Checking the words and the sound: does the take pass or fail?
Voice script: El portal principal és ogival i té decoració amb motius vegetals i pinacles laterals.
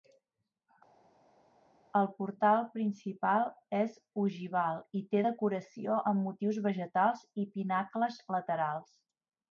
pass